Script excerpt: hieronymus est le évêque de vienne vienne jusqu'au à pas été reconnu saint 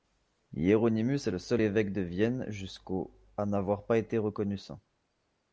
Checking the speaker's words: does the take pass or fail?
fail